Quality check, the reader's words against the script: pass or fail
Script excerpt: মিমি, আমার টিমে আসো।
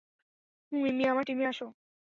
pass